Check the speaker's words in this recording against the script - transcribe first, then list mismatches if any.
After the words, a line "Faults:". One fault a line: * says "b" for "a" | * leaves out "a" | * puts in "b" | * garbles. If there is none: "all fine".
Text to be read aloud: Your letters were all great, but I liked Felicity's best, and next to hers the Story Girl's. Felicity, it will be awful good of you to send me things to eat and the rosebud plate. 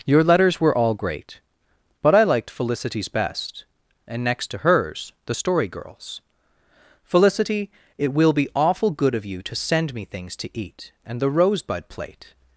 Your letters were all great, but I liked Felicity's best, and next to hers the Story Girl's. Felicity, it will be awful good of you to send me things to eat and the rosebud plate.
Faults:
all fine